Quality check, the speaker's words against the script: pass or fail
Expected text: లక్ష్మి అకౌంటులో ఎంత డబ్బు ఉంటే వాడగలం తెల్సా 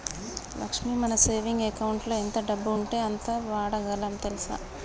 fail